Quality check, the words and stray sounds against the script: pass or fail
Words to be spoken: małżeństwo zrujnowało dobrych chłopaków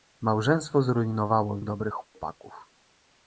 fail